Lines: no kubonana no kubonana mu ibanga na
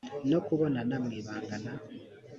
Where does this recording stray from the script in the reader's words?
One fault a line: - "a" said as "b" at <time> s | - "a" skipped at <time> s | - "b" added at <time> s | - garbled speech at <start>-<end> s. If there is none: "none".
- "no kubonana" skipped at 0.9 s